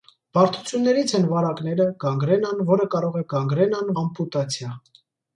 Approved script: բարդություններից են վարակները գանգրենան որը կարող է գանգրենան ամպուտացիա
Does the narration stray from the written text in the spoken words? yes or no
no